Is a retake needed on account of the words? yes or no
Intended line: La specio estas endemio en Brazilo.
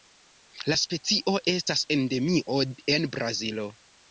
no